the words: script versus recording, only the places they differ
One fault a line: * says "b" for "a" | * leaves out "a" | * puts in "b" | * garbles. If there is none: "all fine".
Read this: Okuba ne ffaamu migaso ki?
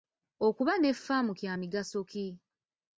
* puts in "kya"